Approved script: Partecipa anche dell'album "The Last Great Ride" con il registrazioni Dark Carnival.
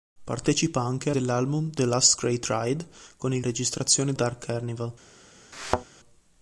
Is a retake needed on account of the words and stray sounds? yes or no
yes